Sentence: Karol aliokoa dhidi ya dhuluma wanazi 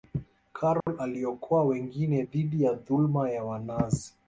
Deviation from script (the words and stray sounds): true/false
true